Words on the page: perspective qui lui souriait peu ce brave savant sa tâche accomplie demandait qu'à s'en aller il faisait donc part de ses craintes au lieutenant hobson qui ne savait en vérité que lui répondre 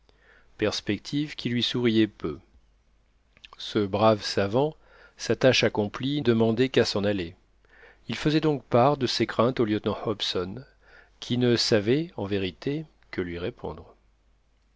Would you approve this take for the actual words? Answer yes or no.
yes